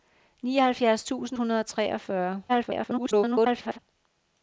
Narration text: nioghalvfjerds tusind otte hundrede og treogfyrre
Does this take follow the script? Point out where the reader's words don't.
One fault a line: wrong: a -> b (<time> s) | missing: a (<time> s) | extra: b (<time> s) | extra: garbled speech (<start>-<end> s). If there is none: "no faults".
missing: otte (1.4 s)
extra: garbled speech (2.5-3.8 s)